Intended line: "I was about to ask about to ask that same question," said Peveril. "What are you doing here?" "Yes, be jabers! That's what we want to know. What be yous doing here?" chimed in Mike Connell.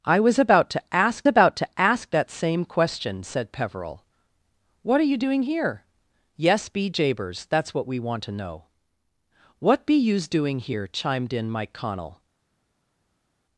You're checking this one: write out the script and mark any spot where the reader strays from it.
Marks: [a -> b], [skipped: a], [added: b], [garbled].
"I was about to ask about to ask that same question," said Peveril. "What are you doing here?" "Yes, be jabers! That's what we want to know. What be yous doing here?" chimed in Mike Connell.